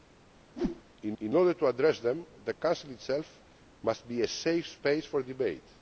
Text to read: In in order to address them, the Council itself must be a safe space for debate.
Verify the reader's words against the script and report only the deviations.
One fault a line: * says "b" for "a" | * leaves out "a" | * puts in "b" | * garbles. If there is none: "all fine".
all fine